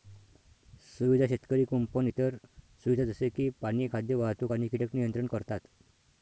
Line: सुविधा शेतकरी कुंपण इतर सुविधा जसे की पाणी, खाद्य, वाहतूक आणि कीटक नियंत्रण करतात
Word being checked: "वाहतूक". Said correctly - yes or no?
yes